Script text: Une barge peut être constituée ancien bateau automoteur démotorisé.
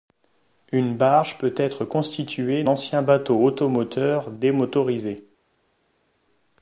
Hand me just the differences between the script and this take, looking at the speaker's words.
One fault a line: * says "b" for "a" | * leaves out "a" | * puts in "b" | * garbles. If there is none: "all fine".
all fine